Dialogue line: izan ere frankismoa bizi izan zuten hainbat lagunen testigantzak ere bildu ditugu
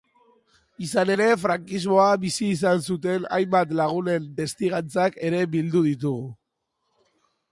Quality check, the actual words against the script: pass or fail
pass